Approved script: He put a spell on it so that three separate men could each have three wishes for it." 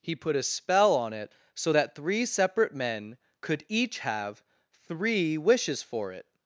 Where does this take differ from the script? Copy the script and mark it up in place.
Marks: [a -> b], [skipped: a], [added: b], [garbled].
He put a spell on it so that three separate men could each have three wishes for it."